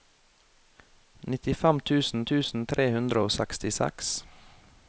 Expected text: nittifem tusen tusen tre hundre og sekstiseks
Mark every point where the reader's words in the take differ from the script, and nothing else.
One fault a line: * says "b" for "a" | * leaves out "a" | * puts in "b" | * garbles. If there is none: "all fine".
all fine